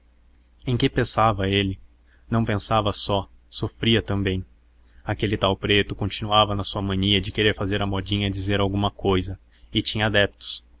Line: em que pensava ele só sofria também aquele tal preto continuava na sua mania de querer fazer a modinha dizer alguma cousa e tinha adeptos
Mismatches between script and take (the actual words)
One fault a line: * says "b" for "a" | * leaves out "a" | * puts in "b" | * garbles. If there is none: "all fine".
* puts in "não pensava"